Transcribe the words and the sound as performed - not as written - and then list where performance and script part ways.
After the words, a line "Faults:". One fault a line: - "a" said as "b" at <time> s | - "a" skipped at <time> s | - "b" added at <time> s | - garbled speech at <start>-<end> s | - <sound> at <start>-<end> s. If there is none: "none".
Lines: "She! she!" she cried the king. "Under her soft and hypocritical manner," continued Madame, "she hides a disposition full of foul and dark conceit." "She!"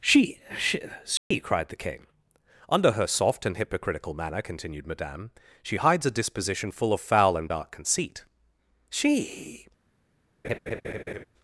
"She! she!" she cried the king. "Under her soft and hypocritical manner," continued Madame, "she hides a disposition full of foul and dark conceit." "She!"
Faults:
- dropout at 1.2-1.3 s
- laugh at 10.4-11.2 s